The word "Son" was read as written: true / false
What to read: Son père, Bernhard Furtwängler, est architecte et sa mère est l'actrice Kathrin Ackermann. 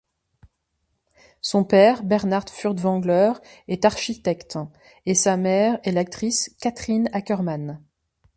true